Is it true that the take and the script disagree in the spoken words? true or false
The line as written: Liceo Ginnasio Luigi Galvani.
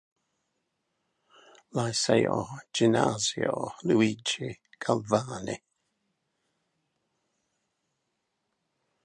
false